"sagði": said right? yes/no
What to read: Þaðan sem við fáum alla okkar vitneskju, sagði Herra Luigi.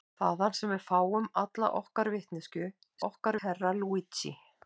no